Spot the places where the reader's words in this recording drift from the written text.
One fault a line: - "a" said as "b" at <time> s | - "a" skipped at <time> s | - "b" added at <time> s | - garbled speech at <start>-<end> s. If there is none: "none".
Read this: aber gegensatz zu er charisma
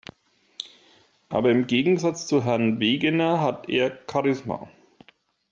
- "im" added at 1.5 s
- "herrn wegener hat" added at 2.4 s